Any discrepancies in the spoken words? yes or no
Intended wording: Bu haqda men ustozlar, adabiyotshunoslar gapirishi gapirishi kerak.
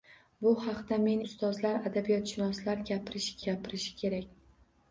no